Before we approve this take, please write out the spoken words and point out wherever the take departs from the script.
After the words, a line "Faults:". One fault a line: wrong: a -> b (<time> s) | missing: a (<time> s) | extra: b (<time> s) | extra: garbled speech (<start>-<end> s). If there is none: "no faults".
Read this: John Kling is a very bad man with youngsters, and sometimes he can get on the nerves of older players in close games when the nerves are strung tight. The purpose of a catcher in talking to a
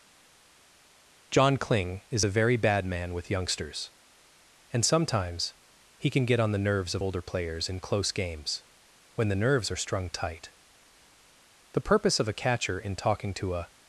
John Kling is a very bad man with youngsters, and sometimes he can get on the nerves of older players in close games when the nerves are strung tight. The purpose of a catcher in talking to a
Faults:
no faults